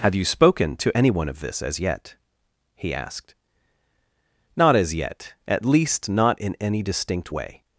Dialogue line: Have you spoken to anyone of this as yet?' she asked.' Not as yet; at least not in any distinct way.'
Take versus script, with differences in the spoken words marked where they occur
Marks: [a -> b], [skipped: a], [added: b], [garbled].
Have you spoken to anyone of this as yet?' [she -> he] asked.' Not as yet; at least not in any distinct way.'